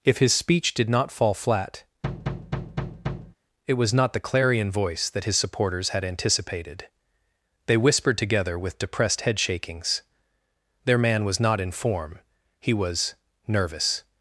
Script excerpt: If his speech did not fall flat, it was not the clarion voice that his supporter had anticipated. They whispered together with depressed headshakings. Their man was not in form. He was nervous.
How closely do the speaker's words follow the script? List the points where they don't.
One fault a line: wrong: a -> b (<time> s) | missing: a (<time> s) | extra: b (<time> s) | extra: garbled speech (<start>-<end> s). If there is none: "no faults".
wrong: supporter -> supporters (5.4 s)